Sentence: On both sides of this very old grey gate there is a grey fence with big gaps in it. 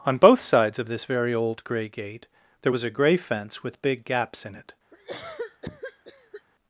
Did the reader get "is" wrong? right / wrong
wrong